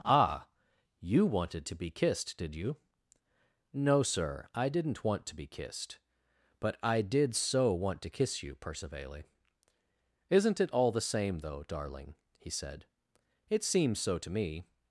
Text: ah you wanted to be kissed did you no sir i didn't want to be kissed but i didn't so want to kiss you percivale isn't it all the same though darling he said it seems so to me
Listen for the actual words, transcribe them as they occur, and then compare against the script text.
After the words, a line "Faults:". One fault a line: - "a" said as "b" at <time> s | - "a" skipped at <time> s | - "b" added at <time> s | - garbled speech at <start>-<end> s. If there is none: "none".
ah you wanted to be kissed did you no sir i didn't want to be kissed but i did so want to kiss you percivale isn't it all the same though darling he said it seems so to me
Faults:
- "didn't" said as "did" at 7.0 s